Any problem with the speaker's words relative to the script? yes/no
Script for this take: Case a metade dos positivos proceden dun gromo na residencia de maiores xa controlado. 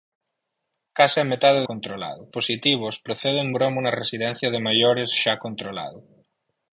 yes